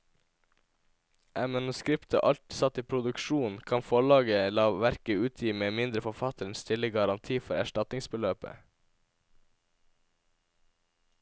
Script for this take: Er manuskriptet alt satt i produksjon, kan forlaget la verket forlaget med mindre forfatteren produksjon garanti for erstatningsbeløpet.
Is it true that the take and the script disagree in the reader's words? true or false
true